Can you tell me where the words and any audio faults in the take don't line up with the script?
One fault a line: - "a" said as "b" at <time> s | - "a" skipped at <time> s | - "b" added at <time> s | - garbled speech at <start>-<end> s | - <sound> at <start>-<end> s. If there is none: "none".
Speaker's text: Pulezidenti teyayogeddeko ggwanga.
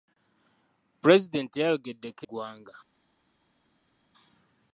none